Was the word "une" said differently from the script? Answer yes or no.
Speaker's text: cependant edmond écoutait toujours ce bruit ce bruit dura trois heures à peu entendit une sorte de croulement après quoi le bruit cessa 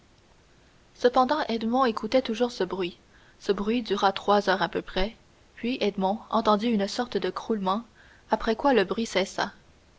no